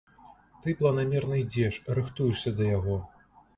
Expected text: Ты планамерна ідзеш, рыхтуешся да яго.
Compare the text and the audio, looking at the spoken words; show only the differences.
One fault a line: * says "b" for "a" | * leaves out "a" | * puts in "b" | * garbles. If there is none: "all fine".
all fine